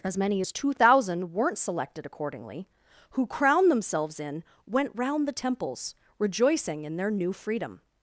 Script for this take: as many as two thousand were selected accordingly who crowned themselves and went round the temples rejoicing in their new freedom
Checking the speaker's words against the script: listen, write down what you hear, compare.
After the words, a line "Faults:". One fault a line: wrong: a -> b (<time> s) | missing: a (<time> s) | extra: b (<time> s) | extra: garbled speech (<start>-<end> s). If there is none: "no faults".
as many as two thousand weren't selected accordingly who crowned themselves in went round the temples rejoicing in their new freedom
Faults:
wrong: were -> weren't (1.3 s)
wrong: and -> in (4.2 s)